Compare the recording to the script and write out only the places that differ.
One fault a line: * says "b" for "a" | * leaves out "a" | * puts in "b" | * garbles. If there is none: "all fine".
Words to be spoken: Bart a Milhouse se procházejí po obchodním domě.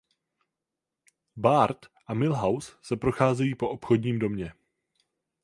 all fine